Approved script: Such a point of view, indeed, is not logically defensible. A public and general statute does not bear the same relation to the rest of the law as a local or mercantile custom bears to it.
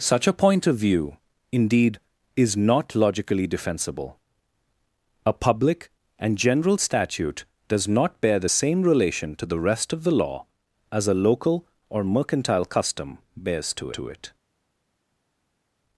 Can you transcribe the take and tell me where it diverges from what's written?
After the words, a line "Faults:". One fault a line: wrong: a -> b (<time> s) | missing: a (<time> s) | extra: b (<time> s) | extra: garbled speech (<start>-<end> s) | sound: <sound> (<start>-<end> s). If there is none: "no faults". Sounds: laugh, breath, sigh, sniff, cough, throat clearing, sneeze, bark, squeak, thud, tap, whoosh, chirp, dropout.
Such a point of view, indeed, is not logically defensible. A public and general statute does not bear the same relation to the rest of the law as a local or mercantile custom bears to to it.
Faults:
extra: to (13.9 s)